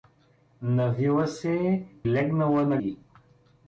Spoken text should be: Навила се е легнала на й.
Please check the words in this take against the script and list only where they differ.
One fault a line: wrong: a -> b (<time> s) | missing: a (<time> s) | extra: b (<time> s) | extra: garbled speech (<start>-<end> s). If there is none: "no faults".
no faults